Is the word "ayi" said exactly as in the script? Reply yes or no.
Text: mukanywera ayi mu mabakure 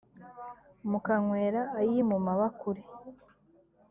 yes